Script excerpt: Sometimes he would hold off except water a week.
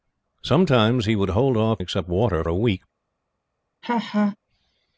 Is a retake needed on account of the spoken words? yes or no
no